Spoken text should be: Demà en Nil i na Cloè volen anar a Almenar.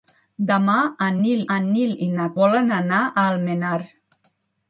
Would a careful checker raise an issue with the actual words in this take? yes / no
yes